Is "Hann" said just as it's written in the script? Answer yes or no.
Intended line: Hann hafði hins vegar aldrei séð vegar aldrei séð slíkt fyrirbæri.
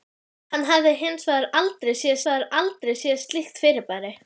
yes